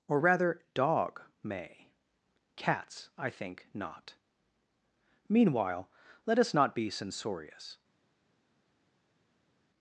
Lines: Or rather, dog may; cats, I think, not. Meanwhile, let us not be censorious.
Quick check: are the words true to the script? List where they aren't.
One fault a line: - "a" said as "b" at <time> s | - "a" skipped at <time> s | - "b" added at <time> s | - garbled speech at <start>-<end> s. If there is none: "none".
none